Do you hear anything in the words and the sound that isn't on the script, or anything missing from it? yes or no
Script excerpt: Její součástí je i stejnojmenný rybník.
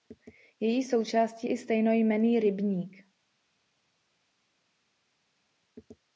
yes